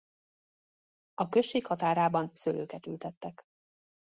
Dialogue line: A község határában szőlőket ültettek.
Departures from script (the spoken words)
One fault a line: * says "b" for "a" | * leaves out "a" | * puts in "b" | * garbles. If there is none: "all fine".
all fine